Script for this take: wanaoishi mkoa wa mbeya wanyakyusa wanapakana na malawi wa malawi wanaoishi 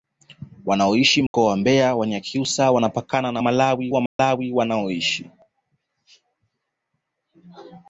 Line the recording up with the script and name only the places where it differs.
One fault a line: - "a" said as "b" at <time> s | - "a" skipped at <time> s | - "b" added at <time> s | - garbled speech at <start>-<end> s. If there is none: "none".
none